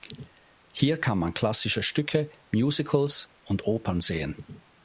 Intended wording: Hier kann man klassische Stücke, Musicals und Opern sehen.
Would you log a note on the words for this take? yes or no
no